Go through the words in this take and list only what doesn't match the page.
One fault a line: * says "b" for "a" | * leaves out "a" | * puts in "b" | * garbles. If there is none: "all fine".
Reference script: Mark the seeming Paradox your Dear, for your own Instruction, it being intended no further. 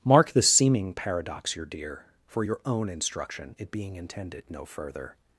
all fine